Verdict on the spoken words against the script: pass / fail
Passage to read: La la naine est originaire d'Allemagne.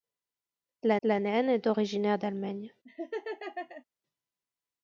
pass